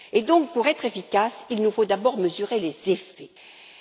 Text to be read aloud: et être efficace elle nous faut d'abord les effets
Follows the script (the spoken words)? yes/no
no